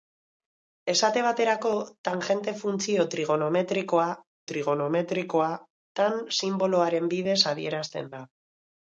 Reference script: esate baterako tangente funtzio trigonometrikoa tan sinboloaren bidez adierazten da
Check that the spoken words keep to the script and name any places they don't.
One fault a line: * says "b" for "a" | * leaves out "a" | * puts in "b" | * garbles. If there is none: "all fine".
* puts in "trigonometrikoa"